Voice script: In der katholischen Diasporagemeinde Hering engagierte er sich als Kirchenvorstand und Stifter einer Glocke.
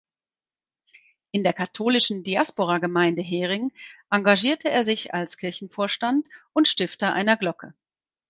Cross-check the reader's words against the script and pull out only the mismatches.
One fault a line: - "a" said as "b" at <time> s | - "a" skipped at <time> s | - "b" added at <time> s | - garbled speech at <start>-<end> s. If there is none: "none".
none